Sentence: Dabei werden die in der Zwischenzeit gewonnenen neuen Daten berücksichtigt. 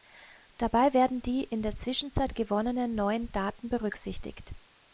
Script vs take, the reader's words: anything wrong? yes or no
no